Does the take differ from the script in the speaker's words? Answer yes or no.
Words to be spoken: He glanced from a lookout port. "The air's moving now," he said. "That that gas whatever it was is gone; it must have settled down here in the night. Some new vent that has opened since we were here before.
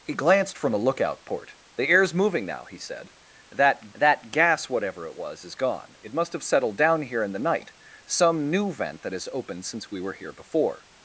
no